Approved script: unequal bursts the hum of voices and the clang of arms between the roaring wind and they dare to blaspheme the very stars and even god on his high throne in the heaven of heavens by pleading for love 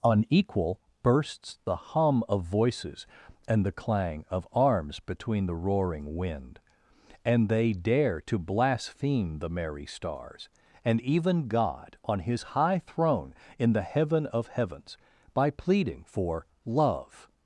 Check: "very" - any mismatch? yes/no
yes